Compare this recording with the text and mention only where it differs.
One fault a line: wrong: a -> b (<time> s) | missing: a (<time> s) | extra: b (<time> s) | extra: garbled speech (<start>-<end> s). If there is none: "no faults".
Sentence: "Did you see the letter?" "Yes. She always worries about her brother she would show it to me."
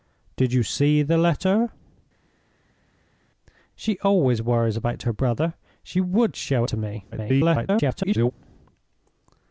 missing: Yes (1.7 s)
missing: it (6.6 s)
extra: garbled speech (7.1-8.3 s)